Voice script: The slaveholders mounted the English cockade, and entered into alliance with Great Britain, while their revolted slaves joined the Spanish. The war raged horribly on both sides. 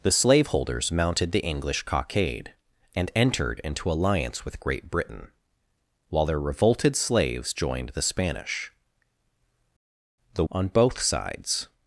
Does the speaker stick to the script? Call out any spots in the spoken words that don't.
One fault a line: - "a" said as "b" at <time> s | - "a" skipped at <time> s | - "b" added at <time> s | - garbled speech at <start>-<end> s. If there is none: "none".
- "war raged horribly" skipped at 10.4 s